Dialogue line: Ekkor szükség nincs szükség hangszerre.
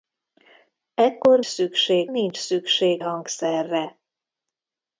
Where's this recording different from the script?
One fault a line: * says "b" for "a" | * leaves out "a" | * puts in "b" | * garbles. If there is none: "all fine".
all fine